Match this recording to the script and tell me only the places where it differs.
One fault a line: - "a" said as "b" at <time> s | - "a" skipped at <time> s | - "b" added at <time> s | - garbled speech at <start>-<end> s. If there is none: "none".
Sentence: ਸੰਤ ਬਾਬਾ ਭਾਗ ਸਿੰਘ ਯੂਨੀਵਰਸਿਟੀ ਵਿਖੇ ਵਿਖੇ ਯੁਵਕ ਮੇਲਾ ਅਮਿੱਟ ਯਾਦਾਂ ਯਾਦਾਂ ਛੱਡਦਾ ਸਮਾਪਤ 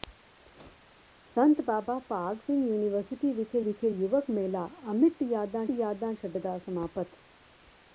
none